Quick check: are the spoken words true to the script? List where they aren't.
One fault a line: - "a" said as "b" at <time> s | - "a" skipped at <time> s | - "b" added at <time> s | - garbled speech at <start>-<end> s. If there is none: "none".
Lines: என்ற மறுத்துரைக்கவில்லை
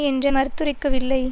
none